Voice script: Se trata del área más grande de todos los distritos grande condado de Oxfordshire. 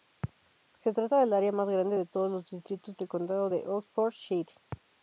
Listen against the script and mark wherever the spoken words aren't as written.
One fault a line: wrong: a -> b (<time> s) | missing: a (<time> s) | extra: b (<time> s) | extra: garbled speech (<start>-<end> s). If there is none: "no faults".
wrong: grande -> del (2.9 s)